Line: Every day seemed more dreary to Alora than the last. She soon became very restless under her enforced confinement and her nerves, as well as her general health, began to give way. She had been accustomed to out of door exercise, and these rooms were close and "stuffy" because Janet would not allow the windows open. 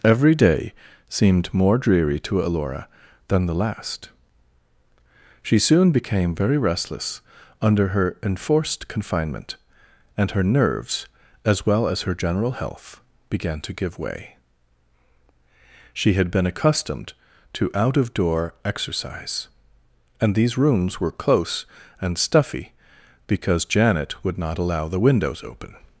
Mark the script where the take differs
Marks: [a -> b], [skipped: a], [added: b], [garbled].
Every day seemed more dreary to Alora than the last. She soon became very restless under her enforced confinement and her nerves, as well as her general health, began to give way. She had been accustomed to out of door exercise, and these rooms were close and "stuffy" because Janet would not allow the windows open.